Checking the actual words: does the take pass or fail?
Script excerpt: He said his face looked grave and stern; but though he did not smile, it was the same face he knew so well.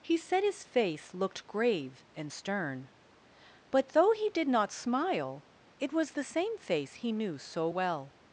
pass